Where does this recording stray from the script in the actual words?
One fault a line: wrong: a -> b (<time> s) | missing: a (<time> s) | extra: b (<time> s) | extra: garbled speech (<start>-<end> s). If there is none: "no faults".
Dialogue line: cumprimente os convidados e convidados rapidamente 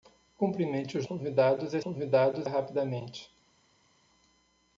no faults